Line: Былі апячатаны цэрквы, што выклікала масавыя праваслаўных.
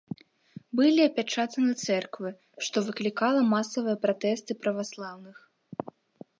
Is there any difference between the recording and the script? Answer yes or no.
yes